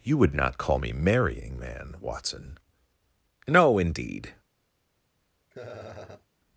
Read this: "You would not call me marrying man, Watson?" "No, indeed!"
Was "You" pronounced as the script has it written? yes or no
yes